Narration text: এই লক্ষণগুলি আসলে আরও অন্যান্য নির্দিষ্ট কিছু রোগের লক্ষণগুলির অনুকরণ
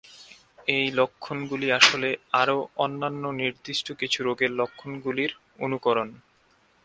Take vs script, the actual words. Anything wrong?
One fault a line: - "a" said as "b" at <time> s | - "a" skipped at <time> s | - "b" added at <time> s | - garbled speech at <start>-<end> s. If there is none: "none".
none